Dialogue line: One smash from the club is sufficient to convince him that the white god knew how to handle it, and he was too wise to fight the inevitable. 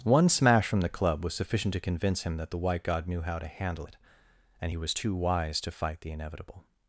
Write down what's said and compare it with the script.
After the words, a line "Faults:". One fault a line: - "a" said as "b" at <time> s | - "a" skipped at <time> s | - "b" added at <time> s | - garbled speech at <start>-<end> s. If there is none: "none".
One smash from the club was sufficient to convince him that the white god knew how to handle it, and he was too wise to fight the inevitable.
Faults:
- "is" said as "was" at 1.2 s